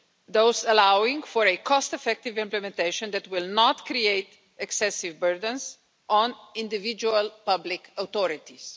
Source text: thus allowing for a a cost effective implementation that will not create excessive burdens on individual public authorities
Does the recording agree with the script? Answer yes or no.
no